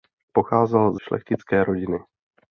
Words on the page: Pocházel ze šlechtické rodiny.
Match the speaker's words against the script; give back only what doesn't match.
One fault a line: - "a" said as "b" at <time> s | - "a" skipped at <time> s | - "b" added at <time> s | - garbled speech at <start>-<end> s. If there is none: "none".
- "ze" skipped at 1.0 s